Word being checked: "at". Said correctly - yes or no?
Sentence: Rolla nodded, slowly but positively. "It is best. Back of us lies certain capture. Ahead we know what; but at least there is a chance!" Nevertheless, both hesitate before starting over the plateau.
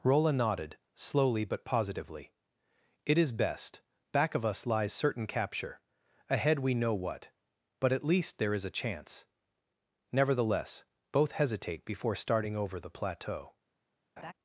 yes